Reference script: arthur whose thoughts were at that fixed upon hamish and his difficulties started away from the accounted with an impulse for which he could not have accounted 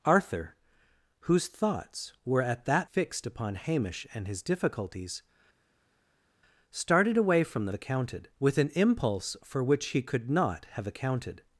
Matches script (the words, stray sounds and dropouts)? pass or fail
pass